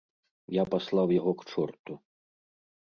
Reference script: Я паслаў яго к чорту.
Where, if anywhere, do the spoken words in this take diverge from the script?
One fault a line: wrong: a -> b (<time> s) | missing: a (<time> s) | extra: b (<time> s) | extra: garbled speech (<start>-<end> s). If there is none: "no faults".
no faults